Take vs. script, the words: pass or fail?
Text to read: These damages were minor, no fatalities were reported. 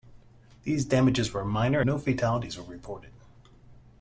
pass